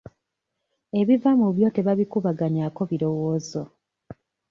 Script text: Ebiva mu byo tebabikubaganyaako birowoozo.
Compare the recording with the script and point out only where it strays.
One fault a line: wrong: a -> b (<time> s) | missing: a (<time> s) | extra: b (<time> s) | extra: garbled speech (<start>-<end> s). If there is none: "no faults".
no faults